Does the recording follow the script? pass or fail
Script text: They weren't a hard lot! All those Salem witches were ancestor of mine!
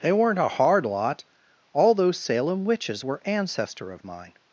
pass